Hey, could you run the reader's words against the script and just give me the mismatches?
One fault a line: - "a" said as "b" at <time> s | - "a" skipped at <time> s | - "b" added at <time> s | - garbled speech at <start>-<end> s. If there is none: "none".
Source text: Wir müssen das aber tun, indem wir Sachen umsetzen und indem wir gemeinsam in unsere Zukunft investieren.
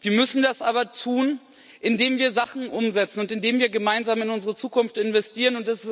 none